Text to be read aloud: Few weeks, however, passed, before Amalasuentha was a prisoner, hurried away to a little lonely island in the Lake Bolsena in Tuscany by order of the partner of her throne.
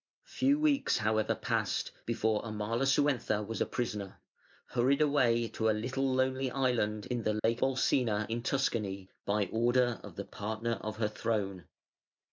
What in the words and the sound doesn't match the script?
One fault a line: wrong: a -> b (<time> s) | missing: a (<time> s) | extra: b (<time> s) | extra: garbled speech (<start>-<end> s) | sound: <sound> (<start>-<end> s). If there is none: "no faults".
sound: dropout (7.4-7.4 s)